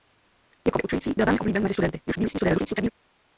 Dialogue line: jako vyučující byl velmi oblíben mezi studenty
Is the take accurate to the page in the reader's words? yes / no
no